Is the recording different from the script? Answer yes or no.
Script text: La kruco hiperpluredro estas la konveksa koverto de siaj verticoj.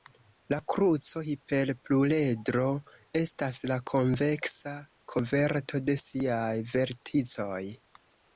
no